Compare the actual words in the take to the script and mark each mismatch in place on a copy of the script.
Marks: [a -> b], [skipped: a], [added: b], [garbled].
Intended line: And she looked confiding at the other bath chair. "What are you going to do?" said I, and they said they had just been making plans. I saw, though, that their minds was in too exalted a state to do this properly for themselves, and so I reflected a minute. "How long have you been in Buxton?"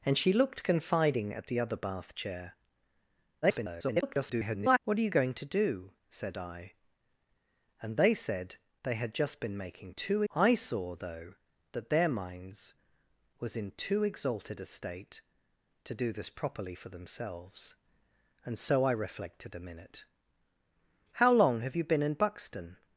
And she looked confiding at the other bath chair. [garbled] "What are you going to do?" said I, and they said they had just been making [plans. -> too] I saw, though, that their minds was in too exalted a state to do this properly for themselves, and so I reflected a minute. "How long have you been in Buxton?"